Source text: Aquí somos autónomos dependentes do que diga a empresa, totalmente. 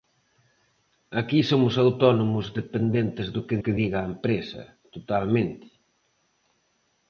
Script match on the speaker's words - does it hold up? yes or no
no